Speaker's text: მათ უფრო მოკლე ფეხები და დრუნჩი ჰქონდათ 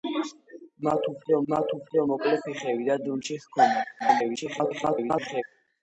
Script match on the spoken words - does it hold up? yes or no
no